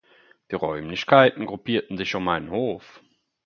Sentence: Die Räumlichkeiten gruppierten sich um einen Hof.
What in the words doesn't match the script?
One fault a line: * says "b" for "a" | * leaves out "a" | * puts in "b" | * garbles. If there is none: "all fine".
all fine